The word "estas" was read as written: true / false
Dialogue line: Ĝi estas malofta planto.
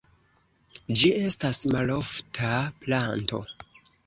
true